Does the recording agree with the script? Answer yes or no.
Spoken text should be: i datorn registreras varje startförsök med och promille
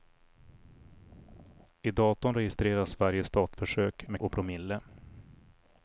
yes